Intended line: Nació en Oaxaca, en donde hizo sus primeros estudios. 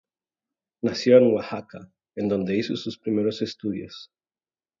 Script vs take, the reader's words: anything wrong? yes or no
no